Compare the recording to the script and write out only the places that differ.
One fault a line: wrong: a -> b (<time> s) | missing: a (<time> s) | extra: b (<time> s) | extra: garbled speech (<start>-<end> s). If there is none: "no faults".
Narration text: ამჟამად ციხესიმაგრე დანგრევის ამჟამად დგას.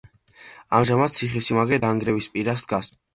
wrong: ამჟამად -> პირას (2.4 s)